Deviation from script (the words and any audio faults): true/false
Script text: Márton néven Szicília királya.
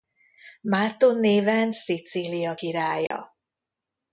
true